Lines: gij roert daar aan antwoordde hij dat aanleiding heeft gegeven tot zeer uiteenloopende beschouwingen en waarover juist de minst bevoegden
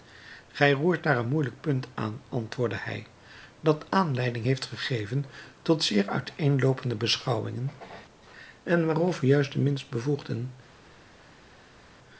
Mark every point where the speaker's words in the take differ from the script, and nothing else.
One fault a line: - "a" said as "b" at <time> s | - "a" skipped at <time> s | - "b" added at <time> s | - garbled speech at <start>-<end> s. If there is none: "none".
- "een moeielijk punt" added at 1.2 s